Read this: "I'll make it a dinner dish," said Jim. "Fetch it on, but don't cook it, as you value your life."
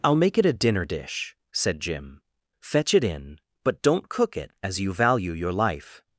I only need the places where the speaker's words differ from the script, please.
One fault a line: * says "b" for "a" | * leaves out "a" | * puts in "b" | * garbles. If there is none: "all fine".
* says "in" for "on"